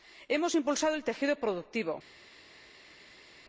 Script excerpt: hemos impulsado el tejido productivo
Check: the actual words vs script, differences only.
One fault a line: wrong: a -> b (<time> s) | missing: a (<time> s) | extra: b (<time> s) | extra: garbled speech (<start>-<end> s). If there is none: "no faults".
no faults